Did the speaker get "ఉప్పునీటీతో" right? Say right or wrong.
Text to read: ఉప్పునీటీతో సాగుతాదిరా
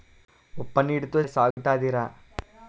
right